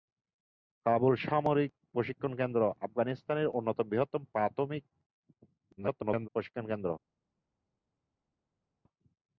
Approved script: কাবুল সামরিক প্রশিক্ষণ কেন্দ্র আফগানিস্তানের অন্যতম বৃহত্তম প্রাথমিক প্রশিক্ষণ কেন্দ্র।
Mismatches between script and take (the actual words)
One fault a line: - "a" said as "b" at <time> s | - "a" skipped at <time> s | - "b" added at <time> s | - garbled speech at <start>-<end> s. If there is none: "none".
- garbled speech at 5.8-6.3 s